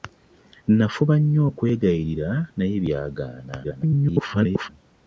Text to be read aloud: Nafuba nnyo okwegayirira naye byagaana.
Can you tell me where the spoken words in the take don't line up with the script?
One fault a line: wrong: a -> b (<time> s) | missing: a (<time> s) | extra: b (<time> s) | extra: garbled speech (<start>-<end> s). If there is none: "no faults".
extra: garbled speech (3.6-4.7 s)